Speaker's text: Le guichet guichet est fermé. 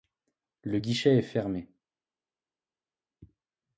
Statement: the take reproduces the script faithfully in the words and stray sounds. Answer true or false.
false